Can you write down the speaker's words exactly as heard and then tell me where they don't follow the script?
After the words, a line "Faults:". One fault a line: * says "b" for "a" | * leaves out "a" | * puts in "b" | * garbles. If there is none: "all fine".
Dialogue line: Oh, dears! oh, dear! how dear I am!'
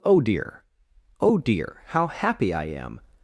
Oh, dear! oh, dear! how happy I am!'
Faults:
* says "dear" for "dears"
* says "happy" for "dear"